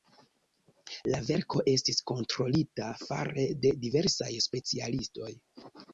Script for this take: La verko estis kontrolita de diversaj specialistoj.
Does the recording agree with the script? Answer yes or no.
no